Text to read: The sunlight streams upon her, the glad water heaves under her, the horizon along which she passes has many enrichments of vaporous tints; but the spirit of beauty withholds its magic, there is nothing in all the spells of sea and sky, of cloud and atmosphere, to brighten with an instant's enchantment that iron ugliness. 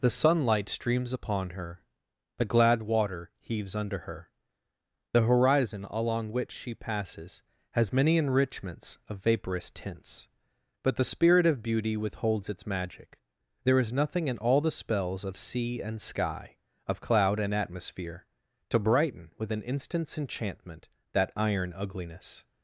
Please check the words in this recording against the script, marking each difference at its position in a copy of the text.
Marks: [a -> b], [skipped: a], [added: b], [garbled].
The sunlight streams upon her, the glad water heaves under her, the horizon along which she passes has many enrichments of vaporous tints; but the spirit of beauty withholds its magic, there is nothing in all the spells of sea and sky, of cloud and atmosphere, to brighten with an instant's enchantment that iron ugliness.